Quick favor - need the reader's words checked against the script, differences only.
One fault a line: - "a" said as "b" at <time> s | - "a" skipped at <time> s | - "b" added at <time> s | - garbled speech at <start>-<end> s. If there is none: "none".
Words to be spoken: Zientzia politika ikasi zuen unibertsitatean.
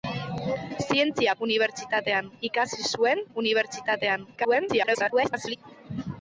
- "politika" said as "unibertsitatean" at 1.5 s
- garbled speech at 4.3-5.6 s